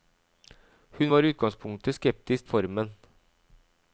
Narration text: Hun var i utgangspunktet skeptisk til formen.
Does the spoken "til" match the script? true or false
false